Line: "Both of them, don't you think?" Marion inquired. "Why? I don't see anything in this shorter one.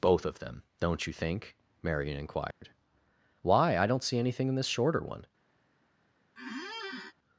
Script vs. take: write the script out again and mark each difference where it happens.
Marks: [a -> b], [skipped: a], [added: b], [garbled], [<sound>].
"Both of them, don't you think?" Marion inquired. [dropout] "Why? I don't see anything in this shorter one. [squeak]